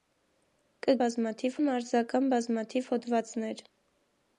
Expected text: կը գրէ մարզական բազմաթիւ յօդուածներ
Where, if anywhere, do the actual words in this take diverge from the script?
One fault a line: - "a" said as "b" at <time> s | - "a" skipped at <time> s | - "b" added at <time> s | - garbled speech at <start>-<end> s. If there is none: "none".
- "գրէ" said as "բազմաթիւ" at 1.0 s